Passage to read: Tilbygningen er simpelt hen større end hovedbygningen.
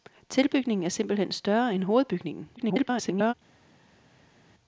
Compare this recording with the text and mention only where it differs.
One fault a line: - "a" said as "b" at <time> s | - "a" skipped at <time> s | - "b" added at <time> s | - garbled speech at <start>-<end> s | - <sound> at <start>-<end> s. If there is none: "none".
- garbled speech at 2.6-3.3 s